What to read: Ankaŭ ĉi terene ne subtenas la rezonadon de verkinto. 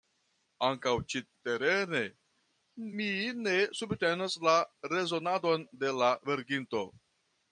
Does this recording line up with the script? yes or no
no